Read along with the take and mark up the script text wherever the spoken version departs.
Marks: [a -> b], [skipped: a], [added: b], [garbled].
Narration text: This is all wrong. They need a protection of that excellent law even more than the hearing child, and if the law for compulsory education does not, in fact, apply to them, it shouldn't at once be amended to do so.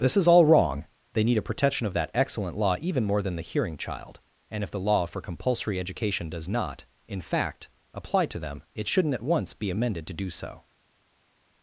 This is all wrong. They need a protection of that excellent law even more than the hearing child, and if the law for compulsory education does not, in fact, apply to them, it shouldn't at once be amended to do so.